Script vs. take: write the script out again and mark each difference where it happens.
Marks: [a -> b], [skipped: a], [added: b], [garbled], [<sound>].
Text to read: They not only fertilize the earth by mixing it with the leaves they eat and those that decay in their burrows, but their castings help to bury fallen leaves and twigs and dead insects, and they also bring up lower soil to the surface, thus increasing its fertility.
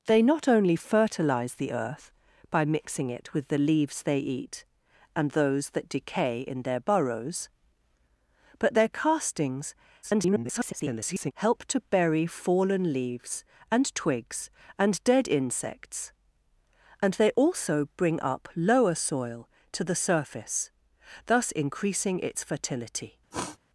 They not only fertilize the earth by mixing it with the leaves they eat and those that decay in their burrows, but their castings [garbled] help to bury fallen leaves and twigs and dead insects, and they also bring up lower soil to the surface, thus increasing its fertility. [sniff]